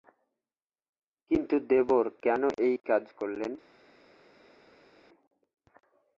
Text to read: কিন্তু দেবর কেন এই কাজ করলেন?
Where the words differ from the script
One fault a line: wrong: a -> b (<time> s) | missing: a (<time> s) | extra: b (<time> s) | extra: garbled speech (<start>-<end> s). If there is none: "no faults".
no faults